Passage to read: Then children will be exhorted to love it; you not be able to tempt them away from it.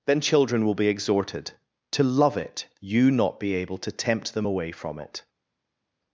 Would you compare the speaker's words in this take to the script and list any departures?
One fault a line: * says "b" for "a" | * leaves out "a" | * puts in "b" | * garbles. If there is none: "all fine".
all fine